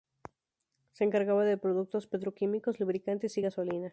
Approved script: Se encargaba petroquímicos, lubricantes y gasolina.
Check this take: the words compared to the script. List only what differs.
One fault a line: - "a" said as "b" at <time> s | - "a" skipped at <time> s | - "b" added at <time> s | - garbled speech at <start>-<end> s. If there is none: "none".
- "de productos" added at 1.4 s